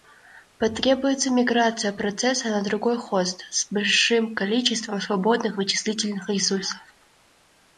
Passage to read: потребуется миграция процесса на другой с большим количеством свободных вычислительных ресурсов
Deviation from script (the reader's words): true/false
true